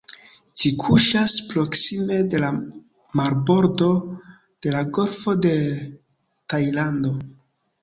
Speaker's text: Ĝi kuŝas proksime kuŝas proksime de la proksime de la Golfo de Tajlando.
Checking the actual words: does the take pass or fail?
fail